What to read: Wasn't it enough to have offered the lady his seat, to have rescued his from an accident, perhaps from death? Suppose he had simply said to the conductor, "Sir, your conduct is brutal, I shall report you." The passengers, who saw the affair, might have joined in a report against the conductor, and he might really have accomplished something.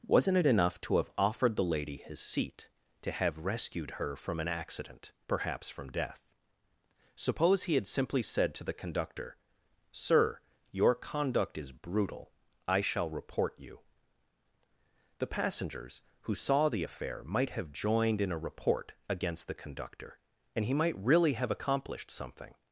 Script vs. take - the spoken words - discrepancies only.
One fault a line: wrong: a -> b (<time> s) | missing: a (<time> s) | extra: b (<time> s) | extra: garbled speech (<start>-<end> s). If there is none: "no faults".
wrong: his -> her (3.9 s)